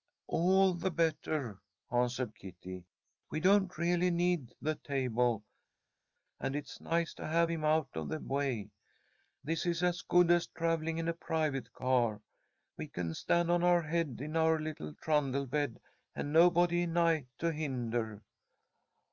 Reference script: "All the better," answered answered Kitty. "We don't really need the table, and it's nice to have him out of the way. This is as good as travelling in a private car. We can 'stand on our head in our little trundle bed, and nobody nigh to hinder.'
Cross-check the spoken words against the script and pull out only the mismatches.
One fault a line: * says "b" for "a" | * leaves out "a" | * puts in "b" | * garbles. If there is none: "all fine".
* leaves out "answered"